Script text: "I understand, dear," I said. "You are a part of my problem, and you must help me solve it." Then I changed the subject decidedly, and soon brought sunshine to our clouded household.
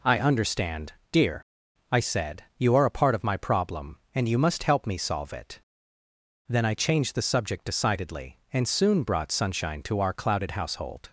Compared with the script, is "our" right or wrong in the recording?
right